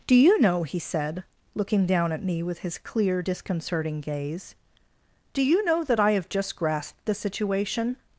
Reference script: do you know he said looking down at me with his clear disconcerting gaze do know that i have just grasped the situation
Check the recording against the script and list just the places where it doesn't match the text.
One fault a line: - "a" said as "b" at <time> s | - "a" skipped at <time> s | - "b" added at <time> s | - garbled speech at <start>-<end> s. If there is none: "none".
- "you" added at 5.4 s